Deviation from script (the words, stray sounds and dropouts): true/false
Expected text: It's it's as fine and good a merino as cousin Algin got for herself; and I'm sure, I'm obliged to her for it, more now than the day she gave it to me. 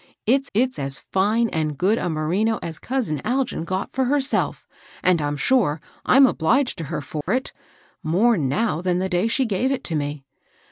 true